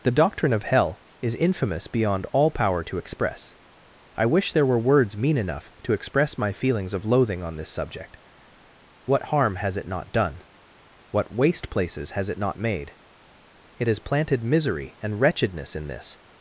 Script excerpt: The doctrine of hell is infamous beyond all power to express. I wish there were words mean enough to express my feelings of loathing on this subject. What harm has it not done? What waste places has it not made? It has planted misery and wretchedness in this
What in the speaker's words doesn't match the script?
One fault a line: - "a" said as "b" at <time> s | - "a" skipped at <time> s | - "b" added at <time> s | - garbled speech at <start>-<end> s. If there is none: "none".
none